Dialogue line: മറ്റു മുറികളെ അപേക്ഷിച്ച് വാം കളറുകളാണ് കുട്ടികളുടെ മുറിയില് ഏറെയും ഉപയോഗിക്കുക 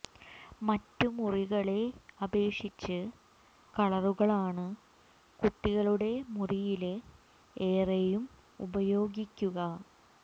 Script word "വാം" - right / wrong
wrong